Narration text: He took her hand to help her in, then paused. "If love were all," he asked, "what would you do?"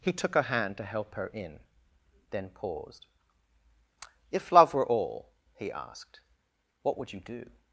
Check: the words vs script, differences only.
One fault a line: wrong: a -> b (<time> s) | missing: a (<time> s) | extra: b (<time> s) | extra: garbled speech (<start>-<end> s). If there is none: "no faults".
no faults